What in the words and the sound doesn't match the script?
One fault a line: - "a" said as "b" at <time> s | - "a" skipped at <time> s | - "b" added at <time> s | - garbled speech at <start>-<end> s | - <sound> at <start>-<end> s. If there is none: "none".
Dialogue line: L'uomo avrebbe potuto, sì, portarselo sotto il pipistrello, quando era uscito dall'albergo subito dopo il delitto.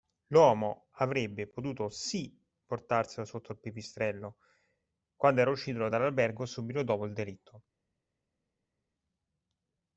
none